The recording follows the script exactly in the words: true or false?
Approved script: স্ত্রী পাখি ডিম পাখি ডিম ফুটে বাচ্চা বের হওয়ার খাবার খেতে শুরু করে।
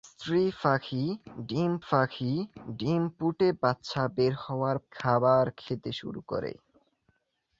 true